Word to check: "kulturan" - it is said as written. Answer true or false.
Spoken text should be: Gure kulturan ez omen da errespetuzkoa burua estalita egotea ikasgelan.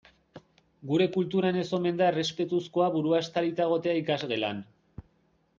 true